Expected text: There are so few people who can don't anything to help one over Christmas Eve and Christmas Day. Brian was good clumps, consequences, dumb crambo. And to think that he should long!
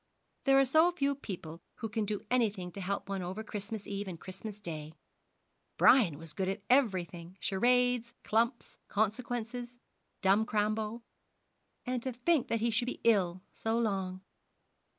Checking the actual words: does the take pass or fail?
fail